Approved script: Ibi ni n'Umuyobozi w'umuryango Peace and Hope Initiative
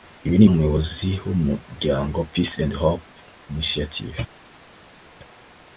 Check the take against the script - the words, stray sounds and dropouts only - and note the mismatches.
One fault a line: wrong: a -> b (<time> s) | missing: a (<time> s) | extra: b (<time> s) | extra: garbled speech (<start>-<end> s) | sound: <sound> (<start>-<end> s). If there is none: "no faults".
no faults